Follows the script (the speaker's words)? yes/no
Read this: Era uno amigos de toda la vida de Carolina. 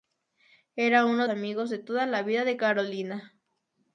yes